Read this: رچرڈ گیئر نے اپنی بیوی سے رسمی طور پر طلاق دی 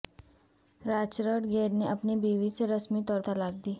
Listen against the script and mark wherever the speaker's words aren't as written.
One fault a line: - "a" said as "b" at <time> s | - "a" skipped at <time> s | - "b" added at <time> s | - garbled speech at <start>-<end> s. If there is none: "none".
- "پر" skipped at 3.2 s